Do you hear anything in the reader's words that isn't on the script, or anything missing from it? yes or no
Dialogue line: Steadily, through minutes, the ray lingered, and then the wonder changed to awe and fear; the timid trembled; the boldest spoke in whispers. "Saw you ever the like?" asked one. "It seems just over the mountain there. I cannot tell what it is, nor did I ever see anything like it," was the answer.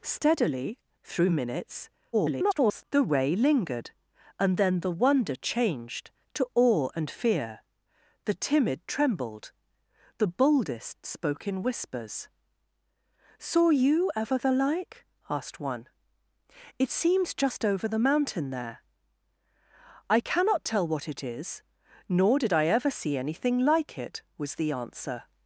yes